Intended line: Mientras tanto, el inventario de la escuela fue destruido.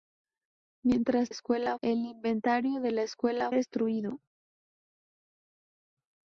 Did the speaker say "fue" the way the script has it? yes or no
no